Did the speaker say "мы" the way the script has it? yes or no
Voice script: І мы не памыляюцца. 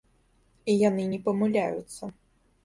no